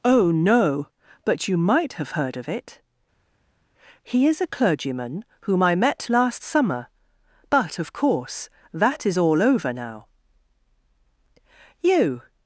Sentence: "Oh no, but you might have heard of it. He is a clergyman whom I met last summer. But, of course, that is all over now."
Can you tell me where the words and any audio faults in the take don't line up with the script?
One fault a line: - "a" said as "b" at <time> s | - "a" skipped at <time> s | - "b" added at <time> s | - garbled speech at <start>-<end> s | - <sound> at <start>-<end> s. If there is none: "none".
- "You" added at 11.8 s